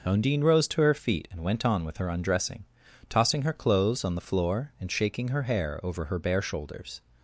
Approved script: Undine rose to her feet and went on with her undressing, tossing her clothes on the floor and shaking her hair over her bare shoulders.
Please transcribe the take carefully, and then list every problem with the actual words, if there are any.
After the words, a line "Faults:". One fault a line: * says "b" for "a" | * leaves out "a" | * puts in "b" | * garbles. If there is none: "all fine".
Undine rose to her feet and went on with her undressing, tossing her clothes on the floor and shaking her hair over her bare shoulders.
Faults:
all fine